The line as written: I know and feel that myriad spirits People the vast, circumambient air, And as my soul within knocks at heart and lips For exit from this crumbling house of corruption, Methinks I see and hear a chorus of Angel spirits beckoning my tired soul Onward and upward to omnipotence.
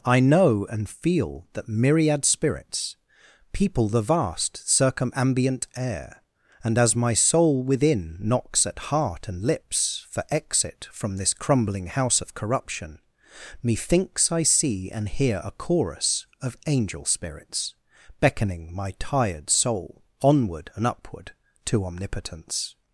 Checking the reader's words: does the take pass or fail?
pass